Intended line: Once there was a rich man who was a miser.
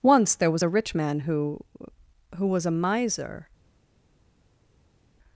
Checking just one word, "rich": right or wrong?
right